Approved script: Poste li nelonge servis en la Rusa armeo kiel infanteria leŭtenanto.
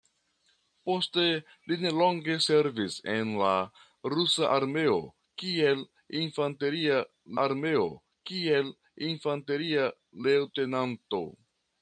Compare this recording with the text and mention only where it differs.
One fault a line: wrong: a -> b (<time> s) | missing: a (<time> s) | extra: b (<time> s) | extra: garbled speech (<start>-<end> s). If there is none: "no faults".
extra: armeo kiel infanteria (7.4 s)